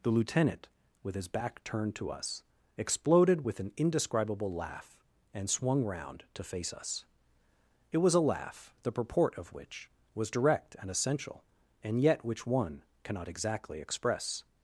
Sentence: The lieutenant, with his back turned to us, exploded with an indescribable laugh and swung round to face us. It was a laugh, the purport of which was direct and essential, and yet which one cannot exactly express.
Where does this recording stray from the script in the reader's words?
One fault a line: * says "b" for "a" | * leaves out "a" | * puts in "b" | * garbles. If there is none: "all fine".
all fine